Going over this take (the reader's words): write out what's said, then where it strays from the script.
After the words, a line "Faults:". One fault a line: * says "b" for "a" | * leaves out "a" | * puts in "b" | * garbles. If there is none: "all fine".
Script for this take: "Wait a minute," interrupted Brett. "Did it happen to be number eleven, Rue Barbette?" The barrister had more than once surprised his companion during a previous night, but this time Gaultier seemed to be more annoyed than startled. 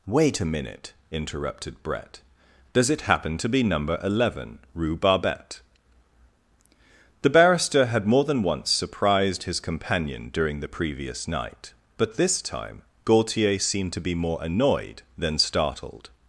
"Wait a minute," interrupted Brett. "Does it happen to be number eleven, Rue Barbette?" The barrister had more than once surprised his companion during the previous night, but this time Gaultier seemed to be more annoyed than startled.
Faults:
* says "Does" for "Did"
* says "the" for "a"